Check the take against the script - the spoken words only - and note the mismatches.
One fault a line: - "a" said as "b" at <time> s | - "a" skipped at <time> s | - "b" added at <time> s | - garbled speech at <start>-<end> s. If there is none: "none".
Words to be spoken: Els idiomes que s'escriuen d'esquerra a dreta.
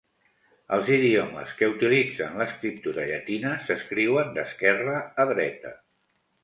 - "utilitzen l'escriptura llatina" added at 1.7 s